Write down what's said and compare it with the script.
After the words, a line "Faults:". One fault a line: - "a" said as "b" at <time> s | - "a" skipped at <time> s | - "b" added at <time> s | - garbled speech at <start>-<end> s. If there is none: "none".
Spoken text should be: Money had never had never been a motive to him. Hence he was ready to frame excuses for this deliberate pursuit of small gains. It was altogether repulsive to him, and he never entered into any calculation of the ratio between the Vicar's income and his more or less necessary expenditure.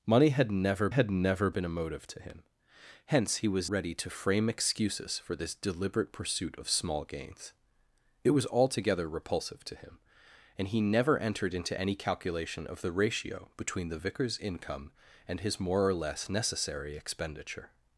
Money had never had never been a motive to him. Hence he was ready to frame excuses for this deliberate pursuit of small gains. It was altogether repulsive to him, and he never entered into any calculation of the ratio between the Vicar's income and his more or less necessary expenditure.
Faults:
none